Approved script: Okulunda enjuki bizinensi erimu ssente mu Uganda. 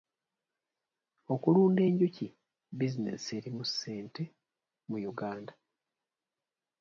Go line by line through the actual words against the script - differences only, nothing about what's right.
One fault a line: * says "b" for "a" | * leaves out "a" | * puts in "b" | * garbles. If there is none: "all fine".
all fine